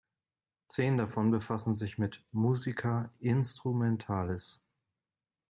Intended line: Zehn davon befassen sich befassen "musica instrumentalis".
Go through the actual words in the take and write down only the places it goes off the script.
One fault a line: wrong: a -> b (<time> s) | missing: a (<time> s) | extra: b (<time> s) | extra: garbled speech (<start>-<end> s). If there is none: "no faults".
wrong: befassen -> mit (2.0 s)